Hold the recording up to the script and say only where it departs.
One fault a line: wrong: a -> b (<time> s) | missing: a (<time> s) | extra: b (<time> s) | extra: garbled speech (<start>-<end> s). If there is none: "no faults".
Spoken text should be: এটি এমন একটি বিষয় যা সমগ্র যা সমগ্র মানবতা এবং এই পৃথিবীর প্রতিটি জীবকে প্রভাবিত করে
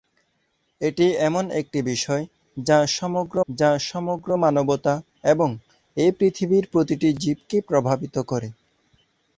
no faults